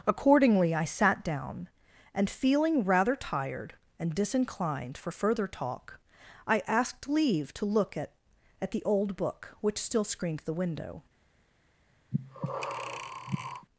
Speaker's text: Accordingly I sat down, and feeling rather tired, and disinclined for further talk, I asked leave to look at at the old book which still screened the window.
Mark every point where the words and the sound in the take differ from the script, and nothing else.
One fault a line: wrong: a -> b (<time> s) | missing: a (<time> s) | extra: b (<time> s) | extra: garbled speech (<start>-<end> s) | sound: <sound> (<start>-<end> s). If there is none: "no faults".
sound: breath (12.1-13.7 s)